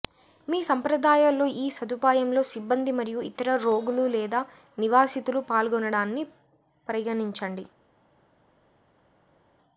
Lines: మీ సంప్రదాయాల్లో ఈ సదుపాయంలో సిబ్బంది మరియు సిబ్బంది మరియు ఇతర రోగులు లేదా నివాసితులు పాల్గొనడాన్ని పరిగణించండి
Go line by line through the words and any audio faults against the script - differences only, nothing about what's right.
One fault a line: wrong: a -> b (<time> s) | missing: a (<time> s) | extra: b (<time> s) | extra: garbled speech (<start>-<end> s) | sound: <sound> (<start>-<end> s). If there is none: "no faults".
missing: సిబ్బంది మరియు (3.2 s)